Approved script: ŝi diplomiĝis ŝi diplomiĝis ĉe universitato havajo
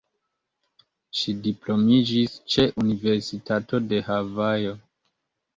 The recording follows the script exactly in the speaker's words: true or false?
false